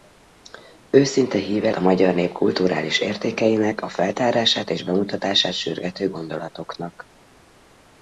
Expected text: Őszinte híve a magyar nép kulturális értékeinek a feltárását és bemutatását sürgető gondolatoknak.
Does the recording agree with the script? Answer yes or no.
yes